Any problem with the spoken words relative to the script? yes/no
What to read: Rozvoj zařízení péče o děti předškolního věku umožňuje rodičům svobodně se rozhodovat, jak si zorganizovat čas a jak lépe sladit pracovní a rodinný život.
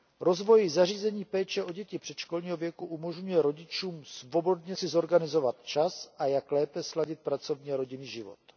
yes